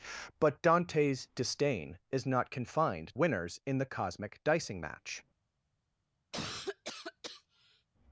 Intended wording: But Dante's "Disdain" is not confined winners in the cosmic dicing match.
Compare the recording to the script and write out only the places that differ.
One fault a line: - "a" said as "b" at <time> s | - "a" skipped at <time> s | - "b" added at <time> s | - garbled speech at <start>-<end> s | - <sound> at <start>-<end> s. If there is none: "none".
- cough at 6.3-7.9 s